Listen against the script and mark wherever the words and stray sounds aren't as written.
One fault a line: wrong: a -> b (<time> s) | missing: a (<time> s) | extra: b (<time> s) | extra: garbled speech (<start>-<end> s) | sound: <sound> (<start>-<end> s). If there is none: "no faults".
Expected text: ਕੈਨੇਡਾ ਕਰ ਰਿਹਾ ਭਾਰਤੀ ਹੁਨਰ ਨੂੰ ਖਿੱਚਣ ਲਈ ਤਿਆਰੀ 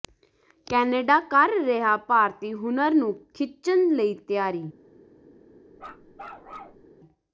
sound: bark (5.8-6.8 s)